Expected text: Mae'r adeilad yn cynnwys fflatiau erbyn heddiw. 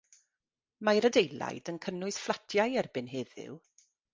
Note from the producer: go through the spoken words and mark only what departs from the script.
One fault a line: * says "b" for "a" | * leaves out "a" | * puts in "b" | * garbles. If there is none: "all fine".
all fine